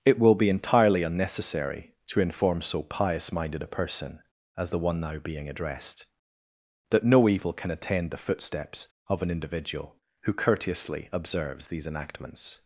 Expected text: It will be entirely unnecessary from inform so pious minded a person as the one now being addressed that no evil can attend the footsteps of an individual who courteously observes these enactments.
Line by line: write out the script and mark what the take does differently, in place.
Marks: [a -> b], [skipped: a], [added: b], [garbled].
It will be entirely unnecessary [from -> to] inform so pious minded a person as the one now being addressed that no evil can attend the footsteps of an individual who courteously observes these enactments.